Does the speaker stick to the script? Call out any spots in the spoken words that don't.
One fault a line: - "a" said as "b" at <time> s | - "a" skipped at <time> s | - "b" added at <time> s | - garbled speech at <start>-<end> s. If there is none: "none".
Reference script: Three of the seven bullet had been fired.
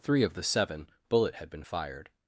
none